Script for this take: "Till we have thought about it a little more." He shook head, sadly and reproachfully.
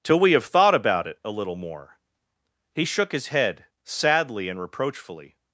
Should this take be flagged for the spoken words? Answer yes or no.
yes